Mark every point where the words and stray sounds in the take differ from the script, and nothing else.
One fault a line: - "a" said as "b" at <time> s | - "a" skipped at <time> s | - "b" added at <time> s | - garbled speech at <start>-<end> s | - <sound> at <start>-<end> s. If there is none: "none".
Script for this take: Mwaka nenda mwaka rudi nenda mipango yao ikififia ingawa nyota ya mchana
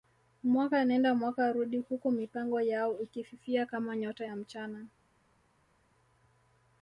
- "nenda" said as "huku" at 1.8 s
- "ingawa" said as "kama" at 3.6 s